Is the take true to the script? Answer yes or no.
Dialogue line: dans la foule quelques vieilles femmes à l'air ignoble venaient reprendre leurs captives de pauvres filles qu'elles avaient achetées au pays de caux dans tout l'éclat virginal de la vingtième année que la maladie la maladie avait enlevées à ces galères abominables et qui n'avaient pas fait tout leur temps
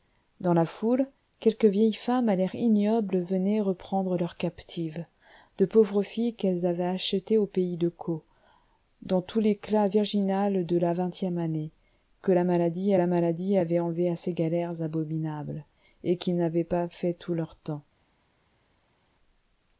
yes